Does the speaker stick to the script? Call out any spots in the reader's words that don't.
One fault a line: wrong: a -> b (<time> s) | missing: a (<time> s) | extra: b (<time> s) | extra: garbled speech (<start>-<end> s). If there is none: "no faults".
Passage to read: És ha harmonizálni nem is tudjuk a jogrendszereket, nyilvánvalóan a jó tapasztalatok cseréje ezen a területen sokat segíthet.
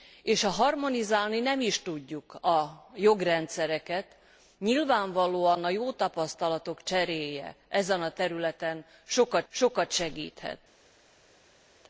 extra: sokat (9.5 s)